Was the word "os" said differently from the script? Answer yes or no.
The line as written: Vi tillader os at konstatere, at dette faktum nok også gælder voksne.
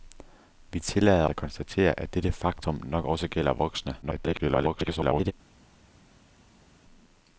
yes